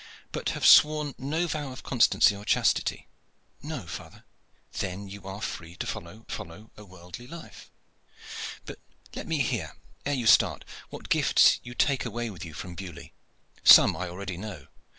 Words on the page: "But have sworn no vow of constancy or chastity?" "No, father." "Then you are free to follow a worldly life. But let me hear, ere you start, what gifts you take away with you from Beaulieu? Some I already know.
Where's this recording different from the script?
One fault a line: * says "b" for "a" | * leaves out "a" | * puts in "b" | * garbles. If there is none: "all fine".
* puts in "follow"